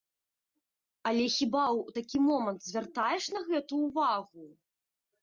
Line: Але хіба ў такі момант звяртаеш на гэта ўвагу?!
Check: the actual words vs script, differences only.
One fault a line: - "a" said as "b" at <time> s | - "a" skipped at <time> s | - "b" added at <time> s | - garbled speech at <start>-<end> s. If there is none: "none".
none